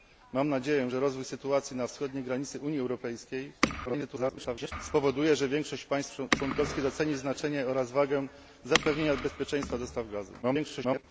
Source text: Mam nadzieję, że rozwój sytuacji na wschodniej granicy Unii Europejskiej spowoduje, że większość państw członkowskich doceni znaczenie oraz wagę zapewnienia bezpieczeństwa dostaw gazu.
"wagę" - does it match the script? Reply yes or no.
yes